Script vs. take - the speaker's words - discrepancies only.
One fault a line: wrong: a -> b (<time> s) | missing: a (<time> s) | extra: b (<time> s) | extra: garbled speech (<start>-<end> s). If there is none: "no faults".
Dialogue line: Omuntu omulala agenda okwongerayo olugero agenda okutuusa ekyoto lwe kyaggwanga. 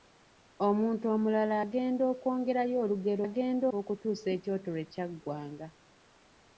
no faults